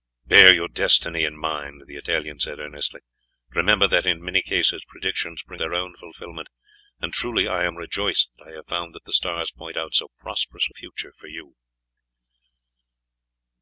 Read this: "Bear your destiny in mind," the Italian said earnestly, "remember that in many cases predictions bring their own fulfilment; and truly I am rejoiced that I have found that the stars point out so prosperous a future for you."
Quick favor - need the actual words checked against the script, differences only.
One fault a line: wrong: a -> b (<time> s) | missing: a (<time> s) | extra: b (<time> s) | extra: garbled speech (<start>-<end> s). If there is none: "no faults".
no faults